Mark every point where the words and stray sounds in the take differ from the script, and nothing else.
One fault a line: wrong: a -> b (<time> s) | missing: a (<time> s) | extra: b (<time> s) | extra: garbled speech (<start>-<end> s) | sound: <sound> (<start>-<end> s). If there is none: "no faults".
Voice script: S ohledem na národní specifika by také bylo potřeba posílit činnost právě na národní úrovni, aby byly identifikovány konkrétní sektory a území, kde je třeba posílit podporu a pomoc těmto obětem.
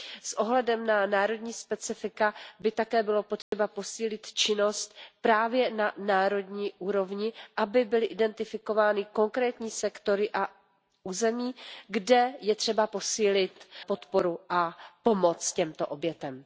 sound: dropout (3.4-3.5 s)